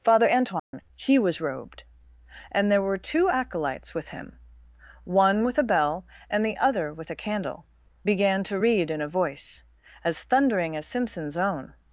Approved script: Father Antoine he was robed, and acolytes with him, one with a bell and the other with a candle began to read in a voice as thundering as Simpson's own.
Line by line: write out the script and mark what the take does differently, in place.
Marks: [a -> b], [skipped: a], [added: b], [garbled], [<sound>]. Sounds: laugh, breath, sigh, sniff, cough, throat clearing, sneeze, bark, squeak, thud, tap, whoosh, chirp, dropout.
Father Antoine [dropout] he was robed, and [added: there were two] acolytes with him, one with a bell and the other with a candle began to read in a voice as thundering as Simpson's own.